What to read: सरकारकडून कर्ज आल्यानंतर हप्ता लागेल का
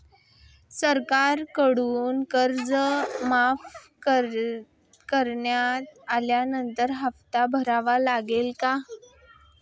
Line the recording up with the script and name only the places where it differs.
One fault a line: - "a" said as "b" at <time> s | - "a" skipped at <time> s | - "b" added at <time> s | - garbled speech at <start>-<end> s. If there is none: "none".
- "माफ करण्यात" added at 3.2 s
- "भरावा" added at 7.5 s